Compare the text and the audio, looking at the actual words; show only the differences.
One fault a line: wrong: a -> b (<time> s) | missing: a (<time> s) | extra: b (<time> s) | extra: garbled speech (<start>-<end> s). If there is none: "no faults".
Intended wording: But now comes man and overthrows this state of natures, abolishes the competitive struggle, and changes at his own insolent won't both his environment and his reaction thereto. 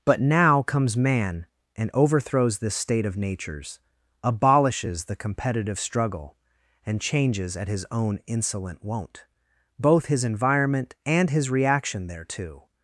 no faults